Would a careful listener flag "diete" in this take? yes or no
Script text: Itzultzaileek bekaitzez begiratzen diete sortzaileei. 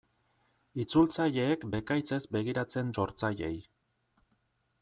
yes